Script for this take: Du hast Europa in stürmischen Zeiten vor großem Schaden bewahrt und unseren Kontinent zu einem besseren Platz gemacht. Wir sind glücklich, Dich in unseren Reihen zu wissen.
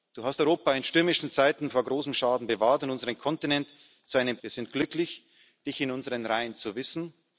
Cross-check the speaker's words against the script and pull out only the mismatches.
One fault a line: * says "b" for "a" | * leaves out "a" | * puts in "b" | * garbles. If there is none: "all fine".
* leaves out "besseren Platz gemacht"